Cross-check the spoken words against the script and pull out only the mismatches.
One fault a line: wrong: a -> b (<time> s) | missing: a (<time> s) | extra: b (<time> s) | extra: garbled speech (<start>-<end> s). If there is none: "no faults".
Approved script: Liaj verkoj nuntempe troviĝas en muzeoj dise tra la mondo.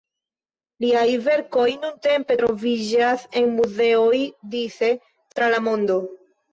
no faults